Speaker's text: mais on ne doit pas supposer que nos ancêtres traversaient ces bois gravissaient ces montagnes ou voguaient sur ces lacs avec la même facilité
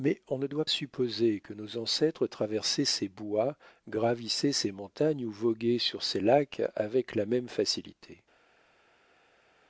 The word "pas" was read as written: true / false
false